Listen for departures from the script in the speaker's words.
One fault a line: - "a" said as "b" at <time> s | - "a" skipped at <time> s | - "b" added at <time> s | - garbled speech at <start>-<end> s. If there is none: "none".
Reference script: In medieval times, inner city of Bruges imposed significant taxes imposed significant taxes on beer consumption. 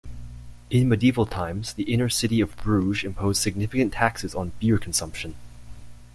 - "the" added at 1.7 s
- "imposed significant taxes" skipped at 4.3 s